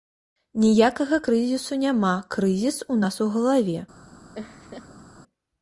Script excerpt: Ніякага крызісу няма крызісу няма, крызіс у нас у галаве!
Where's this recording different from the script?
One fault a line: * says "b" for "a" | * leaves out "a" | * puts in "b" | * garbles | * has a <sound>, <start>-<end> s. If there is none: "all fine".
* leaves out "крызісу няма"
* has a laugh, 4.3-5.0 s